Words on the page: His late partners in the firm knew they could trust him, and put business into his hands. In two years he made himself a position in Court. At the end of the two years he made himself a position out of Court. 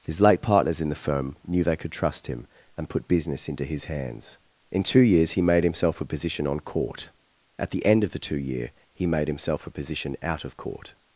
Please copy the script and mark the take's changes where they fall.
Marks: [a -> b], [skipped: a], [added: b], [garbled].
His late partners in the firm knew they could trust him, and put business into his hands. In two years he made himself a position [in -> on] Court. At the end of the two [years -> year] he made himself a position out of Court.